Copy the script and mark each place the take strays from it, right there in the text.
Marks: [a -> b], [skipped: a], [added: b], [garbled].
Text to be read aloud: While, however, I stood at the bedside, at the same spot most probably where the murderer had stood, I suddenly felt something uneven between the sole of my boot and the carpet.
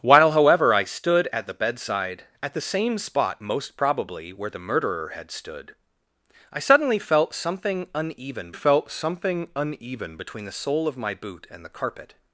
While, however, I stood at the bedside, at the same spot most probably where the murderer had stood, I suddenly felt something uneven [added: felt something uneven] between the sole of my boot and the carpet.